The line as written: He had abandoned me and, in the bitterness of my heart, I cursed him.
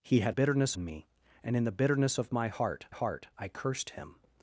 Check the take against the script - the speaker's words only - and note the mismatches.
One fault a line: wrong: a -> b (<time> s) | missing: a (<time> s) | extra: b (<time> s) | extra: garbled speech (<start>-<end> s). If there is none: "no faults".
wrong: abandoned -> bitterness (0.3 s)
extra: heart (2.9 s)